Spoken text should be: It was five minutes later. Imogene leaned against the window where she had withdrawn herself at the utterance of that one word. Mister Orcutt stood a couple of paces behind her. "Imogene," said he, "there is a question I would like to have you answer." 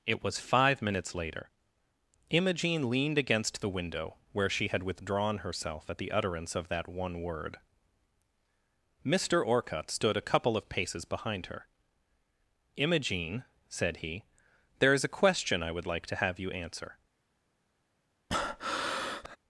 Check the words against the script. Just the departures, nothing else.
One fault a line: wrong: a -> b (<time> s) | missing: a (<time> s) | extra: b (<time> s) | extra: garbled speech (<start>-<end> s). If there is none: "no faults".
no faults